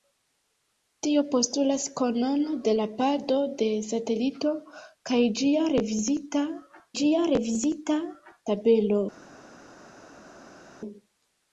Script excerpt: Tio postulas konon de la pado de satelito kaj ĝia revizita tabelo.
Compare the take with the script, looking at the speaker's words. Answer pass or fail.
fail